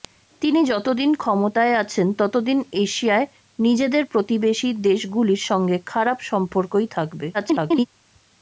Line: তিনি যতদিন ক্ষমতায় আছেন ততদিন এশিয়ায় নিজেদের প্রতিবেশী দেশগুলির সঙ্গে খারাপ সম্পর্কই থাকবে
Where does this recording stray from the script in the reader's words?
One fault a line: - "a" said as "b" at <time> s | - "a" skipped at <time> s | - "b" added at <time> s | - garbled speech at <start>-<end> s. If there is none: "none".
- garbled speech at 7.3-7.9 s